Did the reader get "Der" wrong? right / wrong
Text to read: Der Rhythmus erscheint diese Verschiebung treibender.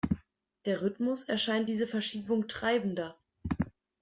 right